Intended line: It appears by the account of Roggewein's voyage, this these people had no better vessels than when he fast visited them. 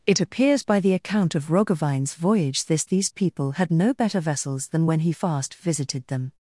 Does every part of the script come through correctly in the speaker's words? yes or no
yes